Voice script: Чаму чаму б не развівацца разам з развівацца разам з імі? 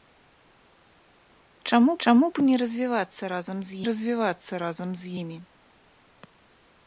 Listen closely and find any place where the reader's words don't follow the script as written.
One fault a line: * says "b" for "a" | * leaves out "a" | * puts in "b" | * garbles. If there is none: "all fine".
all fine